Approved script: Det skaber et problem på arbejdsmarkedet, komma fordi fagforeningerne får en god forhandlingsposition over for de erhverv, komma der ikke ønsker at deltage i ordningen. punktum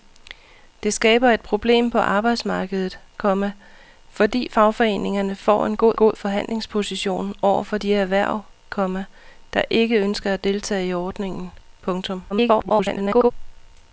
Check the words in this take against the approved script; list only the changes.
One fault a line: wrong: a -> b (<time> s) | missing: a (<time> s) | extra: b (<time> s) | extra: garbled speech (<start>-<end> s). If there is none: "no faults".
extra: god (6.0 s)
extra: garbled speech (12.3-13.3 s)